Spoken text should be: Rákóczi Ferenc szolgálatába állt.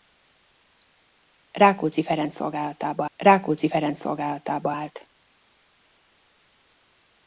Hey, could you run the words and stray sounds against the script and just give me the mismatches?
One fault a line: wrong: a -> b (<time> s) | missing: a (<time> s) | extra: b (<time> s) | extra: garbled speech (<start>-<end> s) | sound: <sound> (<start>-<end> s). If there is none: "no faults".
extra: rákóczi Ferenc szolgálatába (3.2 s)